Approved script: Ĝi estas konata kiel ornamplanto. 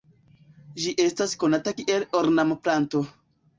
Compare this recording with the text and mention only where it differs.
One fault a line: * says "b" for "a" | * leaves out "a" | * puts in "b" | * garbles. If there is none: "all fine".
all fine